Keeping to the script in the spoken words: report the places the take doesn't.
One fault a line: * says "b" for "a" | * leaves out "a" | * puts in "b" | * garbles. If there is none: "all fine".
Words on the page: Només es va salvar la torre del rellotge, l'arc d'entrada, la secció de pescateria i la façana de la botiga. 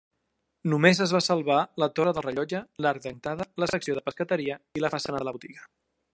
all fine